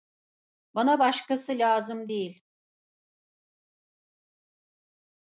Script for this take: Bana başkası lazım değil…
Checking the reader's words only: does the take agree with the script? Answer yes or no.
yes